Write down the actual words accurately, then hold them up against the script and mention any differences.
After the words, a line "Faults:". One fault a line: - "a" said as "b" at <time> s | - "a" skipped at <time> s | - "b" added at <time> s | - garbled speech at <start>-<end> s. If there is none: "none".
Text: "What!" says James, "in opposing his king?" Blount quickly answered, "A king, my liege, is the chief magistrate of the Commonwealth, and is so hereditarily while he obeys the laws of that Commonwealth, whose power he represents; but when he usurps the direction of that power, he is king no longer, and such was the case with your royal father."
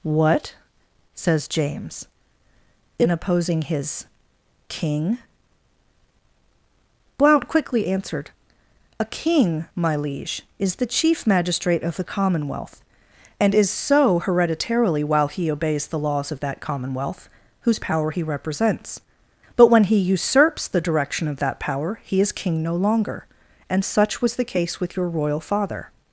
"What!" says James, "in opposing his king?" Blount quickly answered, "A king, my liege, is the chief magistrate of the Commonwealth, and is so hereditarily while he obeys the laws of that Commonwealth, whose power he represents; but when he usurps the direction of that power, he is king no longer, and such was the case with your royal father."
Faults:
none